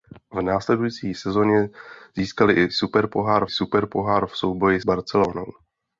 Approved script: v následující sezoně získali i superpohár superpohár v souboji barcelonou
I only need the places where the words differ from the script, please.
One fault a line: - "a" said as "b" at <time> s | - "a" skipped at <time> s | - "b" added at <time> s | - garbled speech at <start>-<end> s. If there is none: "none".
none